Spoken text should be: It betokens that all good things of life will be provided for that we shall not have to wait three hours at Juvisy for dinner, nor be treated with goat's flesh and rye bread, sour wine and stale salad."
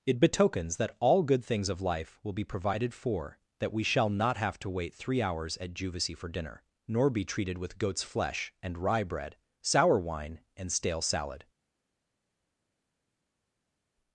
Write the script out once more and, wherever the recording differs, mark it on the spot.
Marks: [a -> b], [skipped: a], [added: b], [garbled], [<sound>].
It betokens that all good things of life will be provided for that we shall not have to wait three hours at Juvisy for dinner, nor be treated with goat's flesh and rye bread, sour wine and stale salad."